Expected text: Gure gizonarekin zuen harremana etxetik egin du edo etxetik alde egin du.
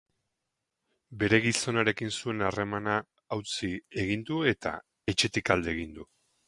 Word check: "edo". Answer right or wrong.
wrong